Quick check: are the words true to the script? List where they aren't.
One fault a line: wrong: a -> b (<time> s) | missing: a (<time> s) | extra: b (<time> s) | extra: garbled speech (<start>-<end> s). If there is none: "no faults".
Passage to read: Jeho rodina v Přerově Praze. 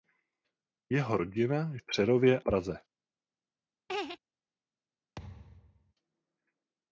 no faults